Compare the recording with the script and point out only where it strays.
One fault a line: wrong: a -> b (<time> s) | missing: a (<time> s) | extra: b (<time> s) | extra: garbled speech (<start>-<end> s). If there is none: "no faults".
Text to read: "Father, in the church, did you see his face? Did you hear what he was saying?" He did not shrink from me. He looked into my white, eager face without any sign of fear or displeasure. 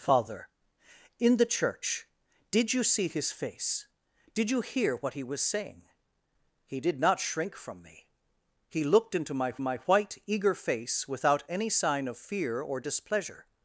extra: my (9.6 s)